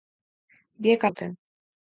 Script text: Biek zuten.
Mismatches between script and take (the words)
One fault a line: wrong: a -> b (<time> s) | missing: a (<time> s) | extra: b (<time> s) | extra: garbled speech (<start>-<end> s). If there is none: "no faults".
no faults